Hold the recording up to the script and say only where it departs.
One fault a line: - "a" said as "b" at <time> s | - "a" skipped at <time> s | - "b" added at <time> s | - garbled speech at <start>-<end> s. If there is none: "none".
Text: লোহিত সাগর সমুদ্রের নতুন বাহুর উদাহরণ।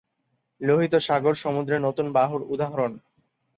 none